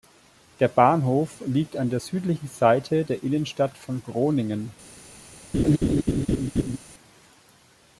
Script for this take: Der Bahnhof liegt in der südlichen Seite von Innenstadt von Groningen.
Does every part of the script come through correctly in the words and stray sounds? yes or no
no